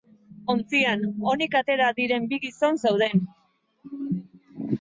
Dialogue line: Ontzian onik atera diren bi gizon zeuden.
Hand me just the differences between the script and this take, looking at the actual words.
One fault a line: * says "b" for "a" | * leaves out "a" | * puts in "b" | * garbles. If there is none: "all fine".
all fine